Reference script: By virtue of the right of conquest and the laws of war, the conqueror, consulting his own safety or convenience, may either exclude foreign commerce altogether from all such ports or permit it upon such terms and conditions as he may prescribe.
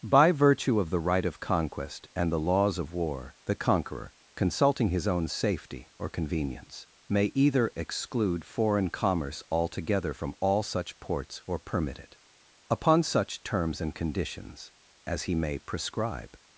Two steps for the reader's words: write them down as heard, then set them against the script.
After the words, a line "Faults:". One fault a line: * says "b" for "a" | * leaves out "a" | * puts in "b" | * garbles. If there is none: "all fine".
By virtue of the right of conquest and the laws of war, the conqueror, consulting his own safety or convenience, may either exclude foreign commerce altogether from all such ports or permit it upon such terms and conditions as he may prescribe.
Faults:
all fine